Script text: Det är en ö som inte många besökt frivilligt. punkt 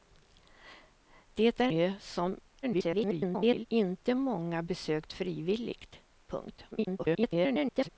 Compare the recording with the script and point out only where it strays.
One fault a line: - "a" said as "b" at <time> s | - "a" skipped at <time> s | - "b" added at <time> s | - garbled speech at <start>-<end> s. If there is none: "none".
- "en" skipped at 1.7 s
- garbled speech at 2.6-3.7 s
- garbled speech at 6.7-7.9 s